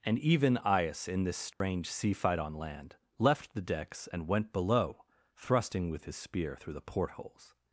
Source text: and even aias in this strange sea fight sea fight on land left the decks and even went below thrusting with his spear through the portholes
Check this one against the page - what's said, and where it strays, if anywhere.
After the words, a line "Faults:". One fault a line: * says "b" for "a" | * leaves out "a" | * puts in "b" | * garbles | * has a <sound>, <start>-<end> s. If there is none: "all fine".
and even aias in this strange sea fight on land left the decks and went below thrusting with his spear through the portholes
Faults:
* has a dropout, 1.5-1.6 s
* leaves out "sea fight"
* leaves out "even"